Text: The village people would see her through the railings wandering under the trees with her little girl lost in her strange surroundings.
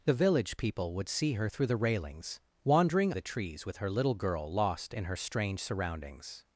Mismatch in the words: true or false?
true